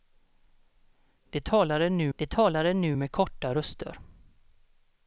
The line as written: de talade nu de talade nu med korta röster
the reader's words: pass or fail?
pass